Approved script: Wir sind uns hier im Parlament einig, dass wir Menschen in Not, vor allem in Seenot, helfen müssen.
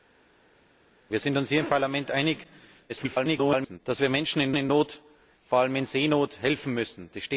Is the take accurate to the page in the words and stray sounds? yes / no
no